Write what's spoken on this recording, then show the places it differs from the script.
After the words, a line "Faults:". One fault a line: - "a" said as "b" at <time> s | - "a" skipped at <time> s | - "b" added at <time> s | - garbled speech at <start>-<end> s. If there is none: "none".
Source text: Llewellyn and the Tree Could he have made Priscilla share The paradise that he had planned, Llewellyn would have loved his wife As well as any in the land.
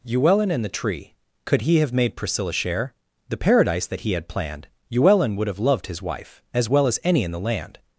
Llewellyn and the Tree Could he have made Priscilla share The paradise that he had planned, Llewellyn would have loved his wife As well as any in the land.
Faults:
none